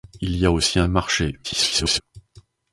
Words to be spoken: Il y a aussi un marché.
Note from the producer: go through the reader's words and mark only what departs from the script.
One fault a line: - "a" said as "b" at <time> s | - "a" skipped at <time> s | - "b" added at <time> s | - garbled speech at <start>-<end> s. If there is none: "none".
- garbled speech at 1.4-2.0 s